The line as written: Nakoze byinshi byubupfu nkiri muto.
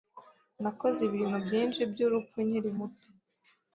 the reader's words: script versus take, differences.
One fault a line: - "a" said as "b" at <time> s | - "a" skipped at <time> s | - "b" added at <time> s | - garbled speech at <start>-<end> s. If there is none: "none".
- "ibintu" added at 1.1 s